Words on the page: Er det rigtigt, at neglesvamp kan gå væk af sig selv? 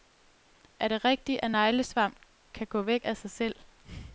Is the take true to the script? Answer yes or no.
yes